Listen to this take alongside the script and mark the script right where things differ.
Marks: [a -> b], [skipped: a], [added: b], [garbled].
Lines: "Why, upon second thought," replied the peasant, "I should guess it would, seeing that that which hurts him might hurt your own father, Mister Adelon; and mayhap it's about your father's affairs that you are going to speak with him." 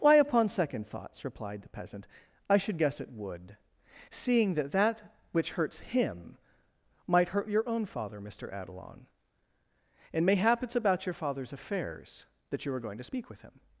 "Why, upon second [thought," -> thoughts] replied the peasant, "I should guess it would, seeing that that which hurts him might hurt your own father, Mister Adelon; and mayhap it's about your father's affairs that you are going to speak with him."